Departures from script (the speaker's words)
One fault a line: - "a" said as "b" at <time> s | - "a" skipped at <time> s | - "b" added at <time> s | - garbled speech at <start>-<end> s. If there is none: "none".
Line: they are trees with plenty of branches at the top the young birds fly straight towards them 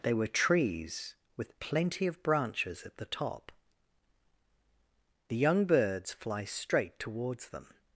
- "are" said as "were" at 0.1 s